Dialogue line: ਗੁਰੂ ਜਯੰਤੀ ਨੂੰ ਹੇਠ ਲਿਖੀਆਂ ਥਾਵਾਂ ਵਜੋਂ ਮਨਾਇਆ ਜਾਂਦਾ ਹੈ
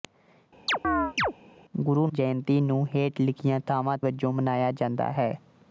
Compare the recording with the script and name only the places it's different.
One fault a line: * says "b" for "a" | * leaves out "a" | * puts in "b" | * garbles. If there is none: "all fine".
all fine